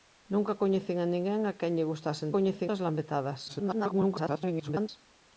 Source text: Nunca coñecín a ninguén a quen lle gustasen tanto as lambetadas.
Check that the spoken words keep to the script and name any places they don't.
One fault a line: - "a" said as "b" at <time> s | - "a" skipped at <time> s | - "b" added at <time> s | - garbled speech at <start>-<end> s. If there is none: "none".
- "tanto" said as "coñecín" at 2.3 s
- garbled speech at 3.5-4.9 s